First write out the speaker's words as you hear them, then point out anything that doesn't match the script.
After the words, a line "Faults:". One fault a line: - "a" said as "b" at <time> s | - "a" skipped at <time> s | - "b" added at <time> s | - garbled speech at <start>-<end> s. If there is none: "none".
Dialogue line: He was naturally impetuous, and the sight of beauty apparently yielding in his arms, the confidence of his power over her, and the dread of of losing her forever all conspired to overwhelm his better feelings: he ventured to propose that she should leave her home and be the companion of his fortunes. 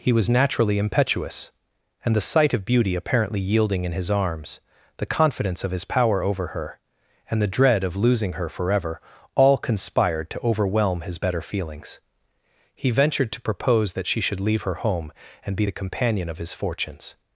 He was naturally impetuous, and the sight of beauty apparently yielding in his arms, the confidence of his power over her, and the dread of losing her forever all conspired to overwhelm his better feelings: he ventured to propose that she should leave her home and be the companion of his fortunes.
Faults:
- "of" skipped at 8.0 s